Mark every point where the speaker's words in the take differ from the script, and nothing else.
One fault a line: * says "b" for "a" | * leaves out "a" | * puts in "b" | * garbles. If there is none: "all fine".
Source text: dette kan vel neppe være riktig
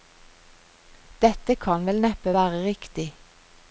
all fine